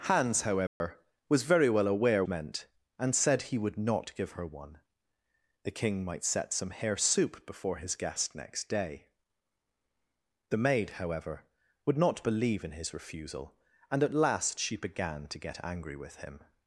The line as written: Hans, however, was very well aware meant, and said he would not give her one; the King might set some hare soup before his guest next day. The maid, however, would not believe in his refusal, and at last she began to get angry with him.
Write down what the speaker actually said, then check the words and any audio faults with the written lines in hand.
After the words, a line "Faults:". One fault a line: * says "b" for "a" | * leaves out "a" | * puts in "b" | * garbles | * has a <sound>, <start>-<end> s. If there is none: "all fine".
Hans, however, was very well aware meant, and said he would not give her one; the King might set some hare soup before his guest next day. The maid, however, would not believe in his refusal, and at last she began to get angry with him.
Faults:
* has a dropout, 0.7-0.8 s